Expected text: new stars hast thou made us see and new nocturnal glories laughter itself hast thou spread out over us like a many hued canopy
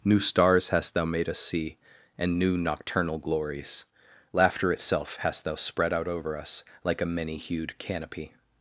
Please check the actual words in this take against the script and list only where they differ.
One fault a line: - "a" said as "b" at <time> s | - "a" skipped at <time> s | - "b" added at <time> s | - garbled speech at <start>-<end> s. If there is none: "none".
none